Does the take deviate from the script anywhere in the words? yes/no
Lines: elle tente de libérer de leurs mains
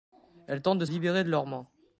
no